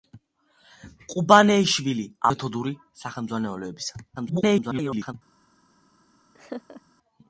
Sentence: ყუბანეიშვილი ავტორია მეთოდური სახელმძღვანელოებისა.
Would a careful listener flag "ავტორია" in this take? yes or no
yes